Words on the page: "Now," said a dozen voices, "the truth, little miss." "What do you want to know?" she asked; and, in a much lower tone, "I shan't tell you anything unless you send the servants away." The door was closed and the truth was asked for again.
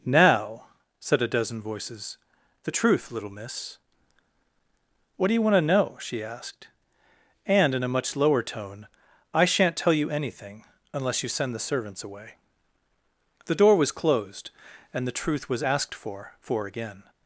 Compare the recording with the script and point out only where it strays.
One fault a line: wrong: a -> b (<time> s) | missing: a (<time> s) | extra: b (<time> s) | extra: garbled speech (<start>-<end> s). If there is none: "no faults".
extra: for (16.4 s)